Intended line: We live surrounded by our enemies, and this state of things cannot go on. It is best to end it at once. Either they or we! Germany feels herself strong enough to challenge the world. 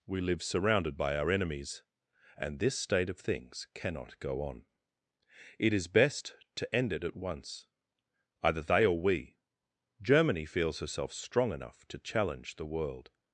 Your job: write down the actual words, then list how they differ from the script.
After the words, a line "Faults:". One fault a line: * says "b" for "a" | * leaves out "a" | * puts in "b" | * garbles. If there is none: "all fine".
We live surrounded by our enemies, and this state of things cannot go on. It is best to end it at once. Either they or we! Germany feels herself strong enough to challenge the world.
Faults:
all fine